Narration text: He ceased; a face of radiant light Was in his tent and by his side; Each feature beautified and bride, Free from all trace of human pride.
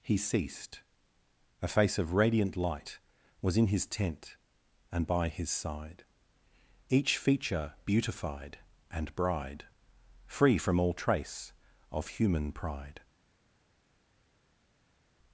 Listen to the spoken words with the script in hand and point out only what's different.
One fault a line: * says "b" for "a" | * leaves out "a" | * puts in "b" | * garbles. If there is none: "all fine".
all fine